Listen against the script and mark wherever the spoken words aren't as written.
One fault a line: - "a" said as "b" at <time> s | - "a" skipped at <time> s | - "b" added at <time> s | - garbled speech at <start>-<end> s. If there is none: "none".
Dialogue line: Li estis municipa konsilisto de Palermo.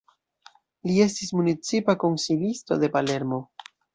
none